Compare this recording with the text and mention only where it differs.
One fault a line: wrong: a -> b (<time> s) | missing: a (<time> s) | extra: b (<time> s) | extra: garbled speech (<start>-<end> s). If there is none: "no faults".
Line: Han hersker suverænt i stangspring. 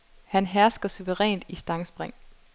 no faults